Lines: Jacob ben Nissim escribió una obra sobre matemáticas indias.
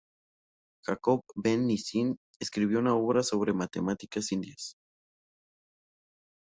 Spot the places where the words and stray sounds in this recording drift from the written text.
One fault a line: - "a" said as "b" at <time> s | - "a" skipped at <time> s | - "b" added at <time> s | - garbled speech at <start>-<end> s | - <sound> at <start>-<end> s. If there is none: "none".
none